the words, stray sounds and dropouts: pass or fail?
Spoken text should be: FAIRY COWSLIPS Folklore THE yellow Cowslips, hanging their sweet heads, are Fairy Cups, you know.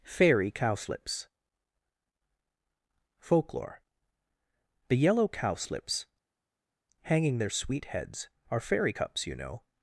pass